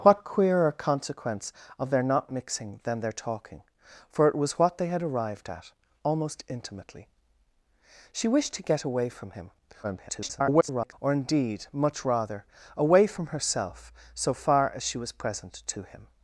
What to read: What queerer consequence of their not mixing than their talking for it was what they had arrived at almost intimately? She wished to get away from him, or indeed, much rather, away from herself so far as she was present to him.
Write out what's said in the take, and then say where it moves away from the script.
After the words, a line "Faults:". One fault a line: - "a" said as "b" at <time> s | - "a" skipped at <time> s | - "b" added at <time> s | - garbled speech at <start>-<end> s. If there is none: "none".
What queerer consequence of their not mixing than their talking for it was what they had arrived at almost intimately? She wished to get away from him, [garbled] or indeed, much rather, away from herself so far as she was present to him.
Faults:
- garbled speech at 9.8-10.9 s